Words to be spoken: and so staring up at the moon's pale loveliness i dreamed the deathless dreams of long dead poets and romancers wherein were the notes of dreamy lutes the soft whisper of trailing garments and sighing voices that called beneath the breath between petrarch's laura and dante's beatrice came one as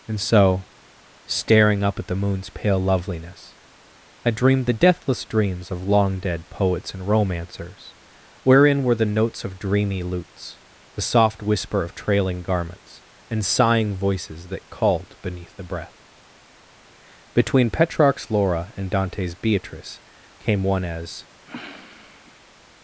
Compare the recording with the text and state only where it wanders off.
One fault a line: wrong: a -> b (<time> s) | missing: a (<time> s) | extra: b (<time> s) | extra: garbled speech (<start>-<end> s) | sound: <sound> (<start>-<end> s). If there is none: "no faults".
sound: sniff (21.4-22.6 s)